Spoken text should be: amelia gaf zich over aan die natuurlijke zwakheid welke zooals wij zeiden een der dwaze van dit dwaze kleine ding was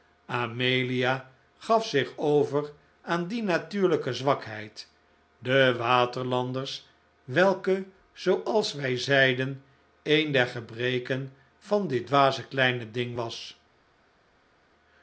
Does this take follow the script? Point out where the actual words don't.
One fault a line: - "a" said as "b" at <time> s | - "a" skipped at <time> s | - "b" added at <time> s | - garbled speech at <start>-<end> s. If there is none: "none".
- "de waterlanders" added at 5.4 s
- "dwaze" said as "gebreken" at 10.5 s